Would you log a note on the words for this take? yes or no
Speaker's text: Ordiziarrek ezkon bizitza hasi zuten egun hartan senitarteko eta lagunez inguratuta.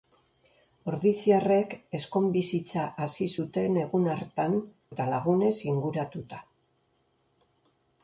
yes